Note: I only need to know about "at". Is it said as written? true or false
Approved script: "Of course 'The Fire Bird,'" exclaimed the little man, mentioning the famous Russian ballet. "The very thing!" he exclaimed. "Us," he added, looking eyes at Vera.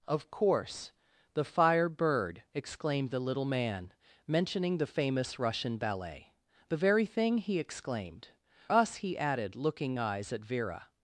true